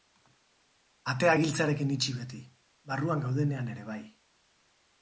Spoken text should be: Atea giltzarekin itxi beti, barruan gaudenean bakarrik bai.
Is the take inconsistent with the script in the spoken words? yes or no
yes